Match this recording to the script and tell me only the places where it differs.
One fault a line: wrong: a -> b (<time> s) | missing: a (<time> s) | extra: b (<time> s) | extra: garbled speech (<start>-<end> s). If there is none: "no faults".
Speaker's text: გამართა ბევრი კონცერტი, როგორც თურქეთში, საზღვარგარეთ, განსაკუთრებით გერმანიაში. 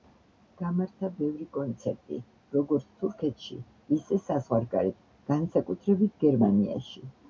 extra: ისე (4.0 s)